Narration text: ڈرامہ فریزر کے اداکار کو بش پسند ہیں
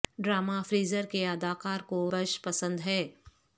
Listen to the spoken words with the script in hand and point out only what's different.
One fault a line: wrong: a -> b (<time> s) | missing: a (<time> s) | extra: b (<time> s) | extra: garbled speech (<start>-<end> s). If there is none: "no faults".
no faults